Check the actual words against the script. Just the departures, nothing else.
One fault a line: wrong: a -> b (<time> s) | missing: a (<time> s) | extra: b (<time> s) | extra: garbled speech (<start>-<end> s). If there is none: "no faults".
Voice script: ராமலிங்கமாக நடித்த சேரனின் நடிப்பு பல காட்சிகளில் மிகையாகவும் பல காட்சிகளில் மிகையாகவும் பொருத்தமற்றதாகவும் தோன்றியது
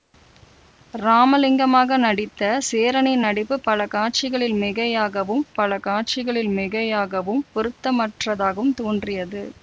no faults